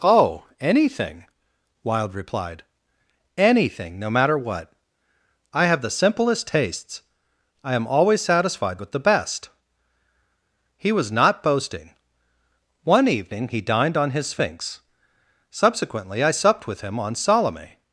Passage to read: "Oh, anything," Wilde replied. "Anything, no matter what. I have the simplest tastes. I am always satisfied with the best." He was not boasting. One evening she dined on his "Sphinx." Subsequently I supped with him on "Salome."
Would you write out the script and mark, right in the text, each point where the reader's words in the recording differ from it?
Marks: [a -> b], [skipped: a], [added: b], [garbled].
"Oh, anything," Wilde replied. "Anything, no matter what. I have the simplest tastes. I am always satisfied with the best." He was not boasting. One evening [she -> he] dined on his "Sphinx." Subsequently I supped with him on "Salome."